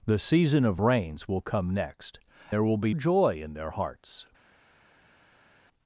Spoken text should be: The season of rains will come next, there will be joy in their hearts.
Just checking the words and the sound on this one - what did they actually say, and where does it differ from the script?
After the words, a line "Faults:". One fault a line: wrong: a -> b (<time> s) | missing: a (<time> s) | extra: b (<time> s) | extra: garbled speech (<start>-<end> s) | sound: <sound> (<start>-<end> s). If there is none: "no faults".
The season of rains will come next, there will be joy in their hearts.
Faults:
no faults